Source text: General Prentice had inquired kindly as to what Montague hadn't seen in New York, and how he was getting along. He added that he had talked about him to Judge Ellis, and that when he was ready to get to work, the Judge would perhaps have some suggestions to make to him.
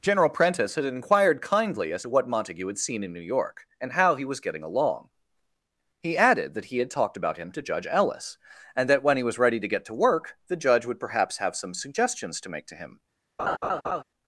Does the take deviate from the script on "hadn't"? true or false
true